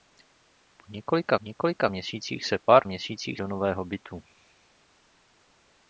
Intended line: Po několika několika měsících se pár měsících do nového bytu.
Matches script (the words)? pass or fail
pass